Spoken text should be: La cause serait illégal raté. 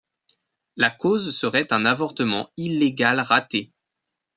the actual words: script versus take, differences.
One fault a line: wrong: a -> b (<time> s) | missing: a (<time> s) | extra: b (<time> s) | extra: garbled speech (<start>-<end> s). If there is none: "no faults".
extra: un avortement (1.7 s)